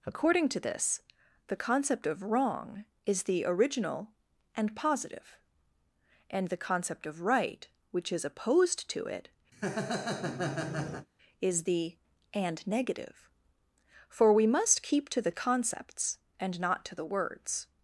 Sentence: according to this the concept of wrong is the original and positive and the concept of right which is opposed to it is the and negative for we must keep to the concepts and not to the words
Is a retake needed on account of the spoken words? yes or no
no